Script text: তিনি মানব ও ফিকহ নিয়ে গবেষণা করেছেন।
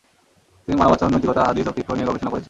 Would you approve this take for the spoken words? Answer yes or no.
no